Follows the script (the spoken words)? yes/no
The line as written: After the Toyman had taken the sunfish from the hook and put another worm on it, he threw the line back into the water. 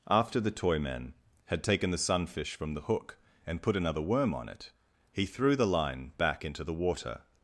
yes